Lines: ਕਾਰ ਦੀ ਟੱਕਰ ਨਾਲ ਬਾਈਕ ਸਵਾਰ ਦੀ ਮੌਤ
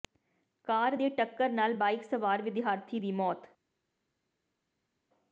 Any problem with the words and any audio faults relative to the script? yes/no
yes